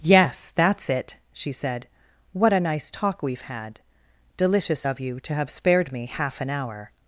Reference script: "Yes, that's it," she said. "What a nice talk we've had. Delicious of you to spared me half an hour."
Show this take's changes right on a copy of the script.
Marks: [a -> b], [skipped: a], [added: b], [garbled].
"Yes, that's it," she said. "What a nice talk we've had. Delicious of you to [added: have] spared me half an hour."